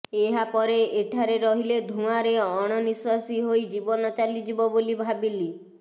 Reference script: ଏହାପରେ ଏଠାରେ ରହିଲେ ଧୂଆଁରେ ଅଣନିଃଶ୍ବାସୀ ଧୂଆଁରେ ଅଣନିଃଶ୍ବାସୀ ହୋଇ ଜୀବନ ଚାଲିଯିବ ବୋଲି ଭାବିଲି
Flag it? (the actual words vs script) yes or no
yes